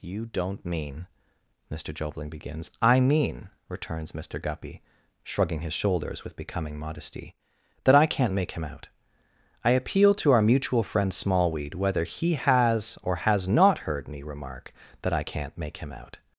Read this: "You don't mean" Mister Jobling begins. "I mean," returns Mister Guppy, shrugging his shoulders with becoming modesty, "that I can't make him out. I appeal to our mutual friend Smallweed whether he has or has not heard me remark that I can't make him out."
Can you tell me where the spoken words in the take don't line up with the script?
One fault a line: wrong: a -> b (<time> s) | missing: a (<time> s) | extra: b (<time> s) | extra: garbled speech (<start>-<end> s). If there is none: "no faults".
no faults